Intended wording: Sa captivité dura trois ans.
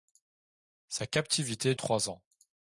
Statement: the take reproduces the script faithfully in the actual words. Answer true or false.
false